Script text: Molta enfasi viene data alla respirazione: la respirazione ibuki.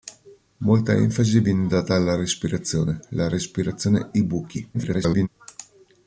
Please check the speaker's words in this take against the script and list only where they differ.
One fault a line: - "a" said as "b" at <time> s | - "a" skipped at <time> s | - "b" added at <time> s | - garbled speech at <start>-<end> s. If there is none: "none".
- garbled speech at 4.7-5.3 s